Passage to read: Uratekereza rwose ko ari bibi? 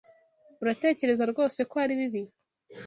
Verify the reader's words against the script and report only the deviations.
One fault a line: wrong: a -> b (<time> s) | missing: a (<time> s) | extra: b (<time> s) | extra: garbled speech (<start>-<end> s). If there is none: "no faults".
no faults